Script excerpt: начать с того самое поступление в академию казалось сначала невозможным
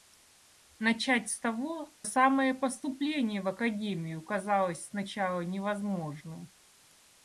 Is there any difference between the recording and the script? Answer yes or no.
no